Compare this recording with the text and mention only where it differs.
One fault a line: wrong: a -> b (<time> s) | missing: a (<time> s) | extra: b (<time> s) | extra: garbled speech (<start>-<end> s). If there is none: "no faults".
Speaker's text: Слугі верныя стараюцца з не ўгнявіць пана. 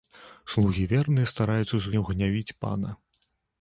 no faults